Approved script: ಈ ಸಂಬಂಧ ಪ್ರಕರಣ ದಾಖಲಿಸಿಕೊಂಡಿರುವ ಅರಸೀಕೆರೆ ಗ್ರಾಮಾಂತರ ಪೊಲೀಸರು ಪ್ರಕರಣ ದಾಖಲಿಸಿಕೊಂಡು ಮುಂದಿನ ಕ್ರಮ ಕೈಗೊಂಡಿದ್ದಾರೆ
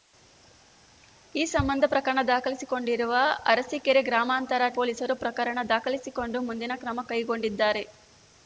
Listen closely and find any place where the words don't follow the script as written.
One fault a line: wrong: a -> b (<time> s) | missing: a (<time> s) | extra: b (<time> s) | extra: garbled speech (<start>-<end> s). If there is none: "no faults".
no faults